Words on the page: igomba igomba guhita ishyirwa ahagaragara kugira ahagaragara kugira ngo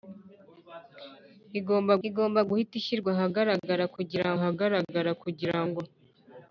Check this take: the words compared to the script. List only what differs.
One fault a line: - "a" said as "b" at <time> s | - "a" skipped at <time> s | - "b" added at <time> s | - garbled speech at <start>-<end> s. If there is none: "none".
none